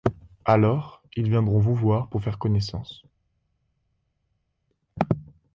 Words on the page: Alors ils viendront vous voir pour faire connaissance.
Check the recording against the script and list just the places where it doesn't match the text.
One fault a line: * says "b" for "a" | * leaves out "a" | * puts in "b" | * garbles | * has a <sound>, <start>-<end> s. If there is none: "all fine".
all fine